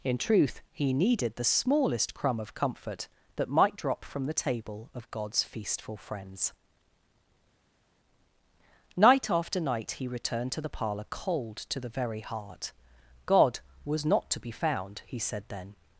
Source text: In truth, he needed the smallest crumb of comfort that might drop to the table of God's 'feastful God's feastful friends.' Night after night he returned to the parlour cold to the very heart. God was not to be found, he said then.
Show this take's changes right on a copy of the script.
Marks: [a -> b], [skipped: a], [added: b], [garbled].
In truth, he needed the smallest crumb of comfort that might drop [to -> from] the table of God's 'feastful [skipped: God's feastful] friends.' Night after night he returned to the parlour cold to the very heart. God was not to be found, he said then.